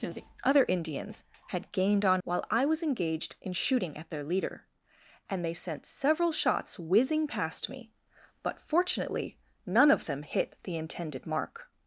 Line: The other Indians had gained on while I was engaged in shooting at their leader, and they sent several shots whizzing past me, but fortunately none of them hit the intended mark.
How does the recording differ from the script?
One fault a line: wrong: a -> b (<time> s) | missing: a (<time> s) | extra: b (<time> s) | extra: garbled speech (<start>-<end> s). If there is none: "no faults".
no faults